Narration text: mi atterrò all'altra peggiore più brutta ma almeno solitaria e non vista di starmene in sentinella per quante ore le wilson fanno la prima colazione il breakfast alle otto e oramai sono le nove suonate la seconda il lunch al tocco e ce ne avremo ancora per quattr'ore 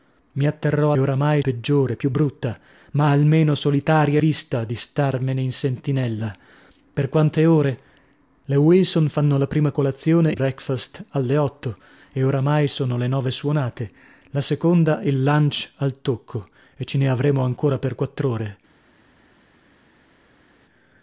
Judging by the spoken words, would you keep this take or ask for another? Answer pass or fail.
fail